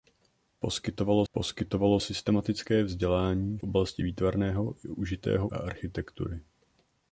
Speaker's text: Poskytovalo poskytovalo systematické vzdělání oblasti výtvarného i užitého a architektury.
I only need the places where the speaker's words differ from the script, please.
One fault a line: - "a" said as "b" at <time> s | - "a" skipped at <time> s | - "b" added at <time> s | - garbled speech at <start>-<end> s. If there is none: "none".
none